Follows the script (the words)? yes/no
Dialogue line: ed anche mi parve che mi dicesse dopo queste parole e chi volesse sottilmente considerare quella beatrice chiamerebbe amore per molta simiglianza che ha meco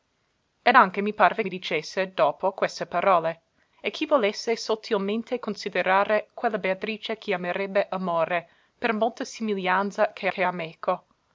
no